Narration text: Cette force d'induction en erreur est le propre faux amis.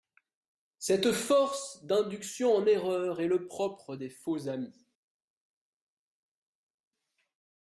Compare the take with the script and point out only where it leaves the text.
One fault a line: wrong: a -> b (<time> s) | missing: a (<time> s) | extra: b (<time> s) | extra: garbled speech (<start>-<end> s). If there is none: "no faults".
extra: des (3.9 s)